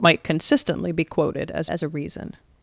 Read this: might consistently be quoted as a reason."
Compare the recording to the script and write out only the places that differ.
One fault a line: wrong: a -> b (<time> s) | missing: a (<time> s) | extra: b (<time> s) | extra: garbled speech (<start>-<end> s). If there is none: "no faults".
extra: as (1.7 s)